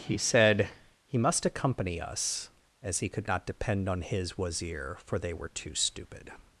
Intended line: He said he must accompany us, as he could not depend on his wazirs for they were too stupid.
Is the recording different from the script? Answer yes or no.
yes